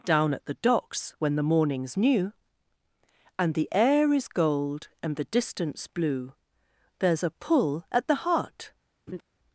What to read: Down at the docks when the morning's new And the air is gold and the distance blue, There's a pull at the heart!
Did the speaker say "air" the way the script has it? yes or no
yes